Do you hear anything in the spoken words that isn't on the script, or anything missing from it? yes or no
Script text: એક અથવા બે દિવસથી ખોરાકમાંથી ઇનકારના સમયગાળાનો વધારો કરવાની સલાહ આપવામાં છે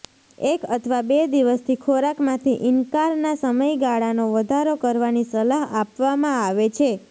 yes